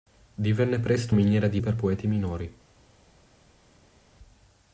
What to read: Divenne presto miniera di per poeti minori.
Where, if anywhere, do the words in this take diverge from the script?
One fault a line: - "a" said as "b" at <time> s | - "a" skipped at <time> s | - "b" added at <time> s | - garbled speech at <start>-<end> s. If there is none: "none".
none